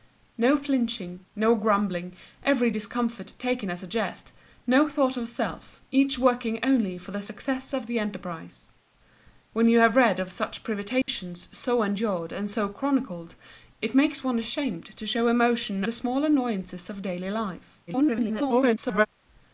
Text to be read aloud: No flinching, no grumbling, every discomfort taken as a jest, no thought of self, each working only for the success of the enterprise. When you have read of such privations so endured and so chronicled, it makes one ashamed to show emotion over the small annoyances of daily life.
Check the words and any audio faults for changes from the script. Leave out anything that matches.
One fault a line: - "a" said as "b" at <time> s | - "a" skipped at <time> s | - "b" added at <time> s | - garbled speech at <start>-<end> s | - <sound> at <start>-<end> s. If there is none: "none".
- dropout at 11.0-11.1 s
- "over" skipped at 15.8 s
- garbled speech at 17.9-19.1 s